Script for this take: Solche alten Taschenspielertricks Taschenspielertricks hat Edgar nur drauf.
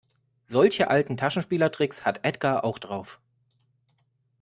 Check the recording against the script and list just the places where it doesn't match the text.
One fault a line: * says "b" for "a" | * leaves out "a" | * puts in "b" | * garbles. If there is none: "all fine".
* leaves out "Taschenspielertricks"
* says "auch" for "nur"